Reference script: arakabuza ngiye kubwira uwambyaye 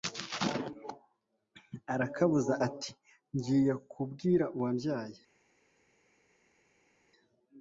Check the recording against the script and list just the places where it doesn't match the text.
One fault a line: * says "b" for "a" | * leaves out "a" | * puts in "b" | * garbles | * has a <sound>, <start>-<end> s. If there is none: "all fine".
* puts in "ati"